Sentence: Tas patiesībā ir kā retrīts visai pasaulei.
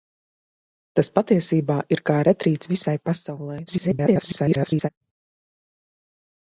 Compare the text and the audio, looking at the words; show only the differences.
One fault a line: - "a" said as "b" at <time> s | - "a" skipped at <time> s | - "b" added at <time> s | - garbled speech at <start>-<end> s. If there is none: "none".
- garbled speech at 3.7-4.9 s